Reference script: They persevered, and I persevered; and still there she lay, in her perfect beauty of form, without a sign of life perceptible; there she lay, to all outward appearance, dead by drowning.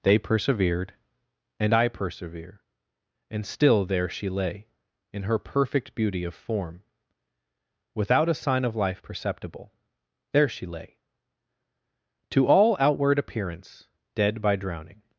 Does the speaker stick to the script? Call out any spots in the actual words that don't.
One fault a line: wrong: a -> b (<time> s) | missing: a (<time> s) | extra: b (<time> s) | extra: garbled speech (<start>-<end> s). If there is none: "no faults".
wrong: persevered -> persevere (1.9 s)